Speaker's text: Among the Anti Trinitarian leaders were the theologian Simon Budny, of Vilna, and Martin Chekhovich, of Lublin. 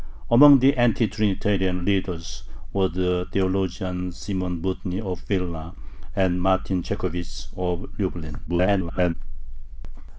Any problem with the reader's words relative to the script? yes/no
yes